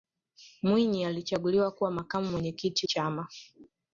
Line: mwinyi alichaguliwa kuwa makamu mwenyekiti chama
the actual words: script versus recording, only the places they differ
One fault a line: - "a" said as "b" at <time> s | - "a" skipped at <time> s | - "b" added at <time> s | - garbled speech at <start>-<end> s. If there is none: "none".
none